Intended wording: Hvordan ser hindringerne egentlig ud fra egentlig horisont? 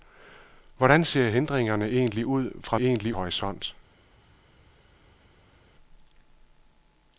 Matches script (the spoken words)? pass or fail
pass